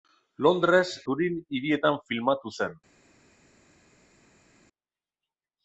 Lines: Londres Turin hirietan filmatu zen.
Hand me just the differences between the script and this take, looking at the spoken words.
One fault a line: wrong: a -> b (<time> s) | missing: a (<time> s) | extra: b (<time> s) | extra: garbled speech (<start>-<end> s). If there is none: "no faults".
no faults